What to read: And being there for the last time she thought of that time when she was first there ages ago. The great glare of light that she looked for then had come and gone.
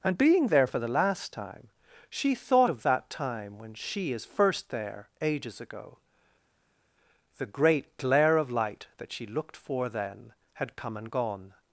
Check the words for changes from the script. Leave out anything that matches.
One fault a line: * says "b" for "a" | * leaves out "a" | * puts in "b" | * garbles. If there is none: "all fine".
* says "is" for "was"